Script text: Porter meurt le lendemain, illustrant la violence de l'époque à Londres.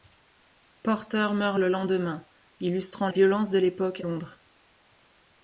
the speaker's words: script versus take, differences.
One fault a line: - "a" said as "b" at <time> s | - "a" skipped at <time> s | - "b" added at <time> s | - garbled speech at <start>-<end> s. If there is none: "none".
- "la" skipped at 3.1 s
- "à" skipped at 4.0 s